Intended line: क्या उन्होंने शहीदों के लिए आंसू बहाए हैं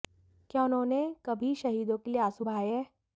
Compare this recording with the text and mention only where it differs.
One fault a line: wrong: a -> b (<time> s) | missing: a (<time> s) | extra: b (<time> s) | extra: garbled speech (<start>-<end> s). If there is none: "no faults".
extra: कभी (1.2 s)